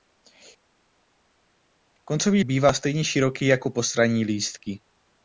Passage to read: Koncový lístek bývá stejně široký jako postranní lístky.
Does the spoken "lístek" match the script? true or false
false